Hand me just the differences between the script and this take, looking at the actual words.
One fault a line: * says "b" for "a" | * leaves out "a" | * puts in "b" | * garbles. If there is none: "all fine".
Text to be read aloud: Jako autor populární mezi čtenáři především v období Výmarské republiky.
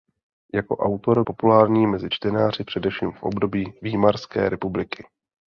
all fine